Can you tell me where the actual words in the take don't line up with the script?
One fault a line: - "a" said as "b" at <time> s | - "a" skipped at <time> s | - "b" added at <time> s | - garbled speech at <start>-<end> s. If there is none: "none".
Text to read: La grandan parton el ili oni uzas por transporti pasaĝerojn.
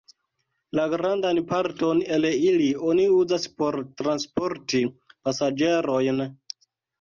none